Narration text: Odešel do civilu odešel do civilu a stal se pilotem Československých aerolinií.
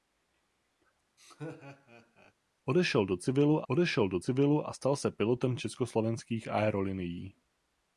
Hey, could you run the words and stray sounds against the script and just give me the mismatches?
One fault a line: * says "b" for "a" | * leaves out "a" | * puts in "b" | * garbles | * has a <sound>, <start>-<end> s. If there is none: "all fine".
* has a laugh, 1.2-2.3 s